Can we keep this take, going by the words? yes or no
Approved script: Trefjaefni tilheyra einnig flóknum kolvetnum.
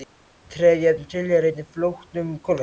yes